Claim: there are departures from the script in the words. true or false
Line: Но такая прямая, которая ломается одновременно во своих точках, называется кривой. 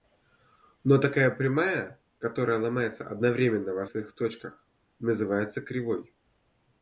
false